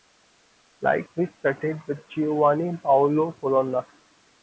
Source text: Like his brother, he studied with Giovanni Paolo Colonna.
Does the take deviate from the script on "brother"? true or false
true